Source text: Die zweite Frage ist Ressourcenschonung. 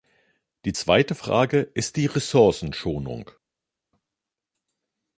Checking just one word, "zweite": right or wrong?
right